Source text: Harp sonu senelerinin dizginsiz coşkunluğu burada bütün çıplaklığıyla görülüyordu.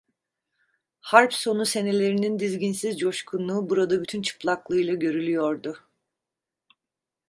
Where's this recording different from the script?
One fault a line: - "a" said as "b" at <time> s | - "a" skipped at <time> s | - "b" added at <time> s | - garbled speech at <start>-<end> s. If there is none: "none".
none